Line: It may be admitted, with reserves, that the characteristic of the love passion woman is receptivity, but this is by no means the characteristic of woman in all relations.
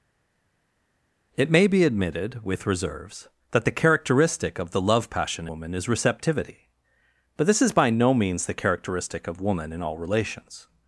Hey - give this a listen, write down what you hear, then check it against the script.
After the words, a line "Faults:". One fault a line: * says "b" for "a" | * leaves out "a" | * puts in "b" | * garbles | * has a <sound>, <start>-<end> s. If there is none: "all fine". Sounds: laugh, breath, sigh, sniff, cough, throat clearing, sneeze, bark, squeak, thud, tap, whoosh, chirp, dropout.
It may be admitted, with reserves, that the characteristic of the love passion woman is receptivity, but this is by no means the characteristic of woman in all relations.
Faults:
all fine